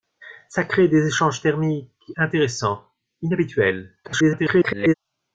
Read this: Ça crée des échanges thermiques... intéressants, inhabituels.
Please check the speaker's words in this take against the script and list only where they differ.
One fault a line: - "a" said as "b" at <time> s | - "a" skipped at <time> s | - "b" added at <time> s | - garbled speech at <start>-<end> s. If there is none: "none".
- garbled speech at 4.0-4.9 s